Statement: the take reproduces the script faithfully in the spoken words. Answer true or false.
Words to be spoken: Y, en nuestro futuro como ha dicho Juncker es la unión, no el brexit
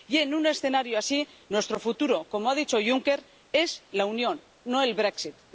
false